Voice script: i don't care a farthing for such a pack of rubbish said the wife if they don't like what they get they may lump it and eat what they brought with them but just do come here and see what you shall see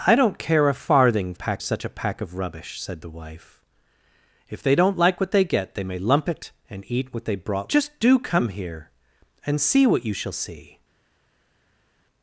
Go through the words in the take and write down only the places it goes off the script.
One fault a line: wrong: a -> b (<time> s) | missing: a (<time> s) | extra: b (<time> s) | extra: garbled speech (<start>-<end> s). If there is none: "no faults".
wrong: for -> pack (1.3 s)
missing: with them but (7.7 s)